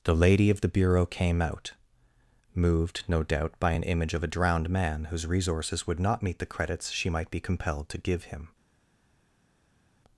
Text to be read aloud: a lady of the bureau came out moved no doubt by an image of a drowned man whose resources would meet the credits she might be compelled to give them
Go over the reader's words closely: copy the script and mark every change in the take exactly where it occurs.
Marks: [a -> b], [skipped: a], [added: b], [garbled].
[a -> the] lady of the bureau came out moved no doubt by an image of a drowned man whose resources would [added: not] meet the credits she might be compelled to give [them -> him]